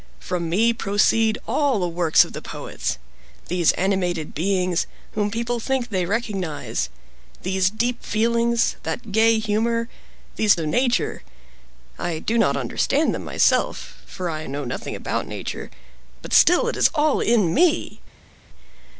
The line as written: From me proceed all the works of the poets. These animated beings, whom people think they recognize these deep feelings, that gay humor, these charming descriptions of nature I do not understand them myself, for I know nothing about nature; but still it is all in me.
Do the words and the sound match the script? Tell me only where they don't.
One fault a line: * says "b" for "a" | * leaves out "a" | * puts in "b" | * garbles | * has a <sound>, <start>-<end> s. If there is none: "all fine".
* leaves out "charming descriptions"